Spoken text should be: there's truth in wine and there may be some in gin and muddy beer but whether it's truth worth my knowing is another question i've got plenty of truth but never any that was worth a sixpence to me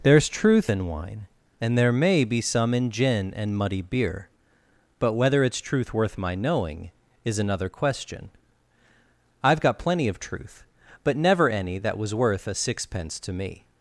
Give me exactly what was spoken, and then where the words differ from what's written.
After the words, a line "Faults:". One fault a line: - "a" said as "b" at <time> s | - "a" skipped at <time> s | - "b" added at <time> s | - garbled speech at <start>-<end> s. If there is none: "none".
there's truth in wine and there may be some in gin and muddy beer but whether it's truth worth my knowing is another question i've got plenty of truth but never any that was worth a sixpence to me
Faults:
none